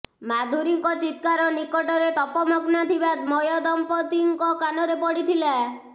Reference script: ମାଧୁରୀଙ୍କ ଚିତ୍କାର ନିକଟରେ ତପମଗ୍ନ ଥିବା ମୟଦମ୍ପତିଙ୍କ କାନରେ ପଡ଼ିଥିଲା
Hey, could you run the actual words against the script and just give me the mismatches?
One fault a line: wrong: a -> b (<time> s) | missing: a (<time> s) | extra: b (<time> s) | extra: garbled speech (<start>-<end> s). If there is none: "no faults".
no faults